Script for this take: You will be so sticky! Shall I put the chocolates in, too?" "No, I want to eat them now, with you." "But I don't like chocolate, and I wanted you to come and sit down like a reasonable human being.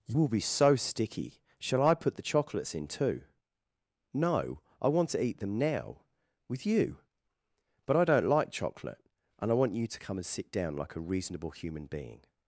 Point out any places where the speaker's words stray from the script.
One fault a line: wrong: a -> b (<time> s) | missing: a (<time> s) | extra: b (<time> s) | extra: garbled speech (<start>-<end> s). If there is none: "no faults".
wrong: wanted -> want (9.5 s)